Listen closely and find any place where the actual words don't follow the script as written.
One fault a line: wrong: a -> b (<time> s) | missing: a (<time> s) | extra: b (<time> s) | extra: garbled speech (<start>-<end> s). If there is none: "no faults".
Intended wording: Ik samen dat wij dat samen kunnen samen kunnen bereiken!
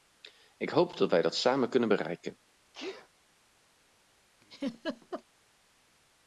wrong: samen -> hoop (0.7 s)
missing: samen kunnen (1.9 s)